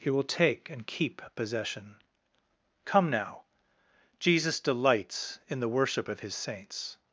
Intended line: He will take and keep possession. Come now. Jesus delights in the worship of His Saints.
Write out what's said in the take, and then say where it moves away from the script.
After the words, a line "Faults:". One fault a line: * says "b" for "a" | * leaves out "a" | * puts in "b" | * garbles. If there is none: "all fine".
He will take and keep possession. Come now. Jesus delights in the worship of His Saints.
Faults:
all fine